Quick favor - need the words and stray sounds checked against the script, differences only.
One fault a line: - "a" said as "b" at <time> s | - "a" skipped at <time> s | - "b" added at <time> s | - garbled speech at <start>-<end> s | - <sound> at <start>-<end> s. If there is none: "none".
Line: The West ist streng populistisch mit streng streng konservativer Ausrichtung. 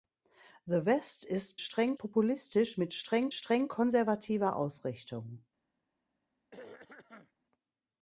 - throat clearing at 6.5-7.3 s